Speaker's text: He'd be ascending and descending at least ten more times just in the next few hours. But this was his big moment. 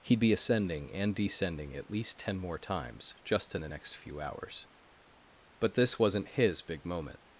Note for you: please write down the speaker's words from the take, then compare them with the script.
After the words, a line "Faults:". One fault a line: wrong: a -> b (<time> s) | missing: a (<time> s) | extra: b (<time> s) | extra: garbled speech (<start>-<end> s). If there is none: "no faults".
He'd be ascending and descending at least ten more times just in the next few hours. But this wasn't his big moment.
Faults:
wrong: was -> wasn't (6.0 s)